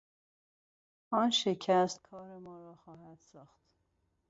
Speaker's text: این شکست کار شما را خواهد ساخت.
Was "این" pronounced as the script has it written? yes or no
no